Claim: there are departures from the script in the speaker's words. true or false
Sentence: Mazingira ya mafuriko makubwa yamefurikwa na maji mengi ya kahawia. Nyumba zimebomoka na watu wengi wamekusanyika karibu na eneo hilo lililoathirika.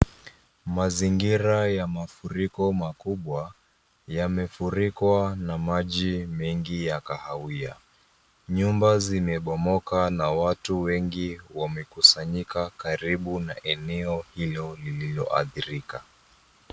false